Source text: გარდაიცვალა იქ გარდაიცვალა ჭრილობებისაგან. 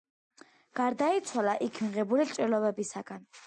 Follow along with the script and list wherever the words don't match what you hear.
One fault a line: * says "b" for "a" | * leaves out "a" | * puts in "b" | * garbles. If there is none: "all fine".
* says "მიღებული" for "გარდაიცვალა"